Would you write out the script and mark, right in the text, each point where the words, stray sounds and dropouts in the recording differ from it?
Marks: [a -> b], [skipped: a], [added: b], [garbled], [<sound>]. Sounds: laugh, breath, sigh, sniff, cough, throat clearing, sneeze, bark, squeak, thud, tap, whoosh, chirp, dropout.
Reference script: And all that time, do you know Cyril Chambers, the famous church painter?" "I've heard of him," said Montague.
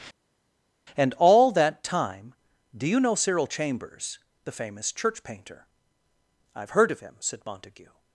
And all that time, do you know Cyril Chambers, the famous church painter?" "I've heard of him," said Montague.